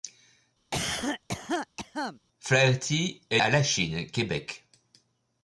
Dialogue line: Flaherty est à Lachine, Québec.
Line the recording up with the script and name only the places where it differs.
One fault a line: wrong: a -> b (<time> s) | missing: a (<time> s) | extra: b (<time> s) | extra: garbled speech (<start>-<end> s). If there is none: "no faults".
no faults